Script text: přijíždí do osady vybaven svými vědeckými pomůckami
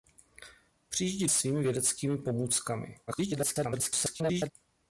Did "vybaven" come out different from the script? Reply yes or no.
yes